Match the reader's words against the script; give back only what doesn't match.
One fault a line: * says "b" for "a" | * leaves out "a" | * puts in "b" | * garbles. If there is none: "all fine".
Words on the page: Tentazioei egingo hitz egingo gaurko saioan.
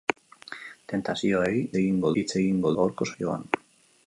all fine